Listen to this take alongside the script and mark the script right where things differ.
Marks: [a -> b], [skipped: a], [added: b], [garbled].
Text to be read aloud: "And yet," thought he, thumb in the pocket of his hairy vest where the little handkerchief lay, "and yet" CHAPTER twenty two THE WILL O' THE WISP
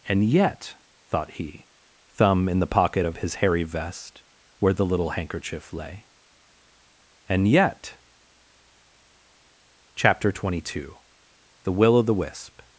"And yet," thought he, thumb in the pocket of his hairy vest where the little handkerchief lay, "and yet" CHAPTER twenty two THE WILL O' THE WISP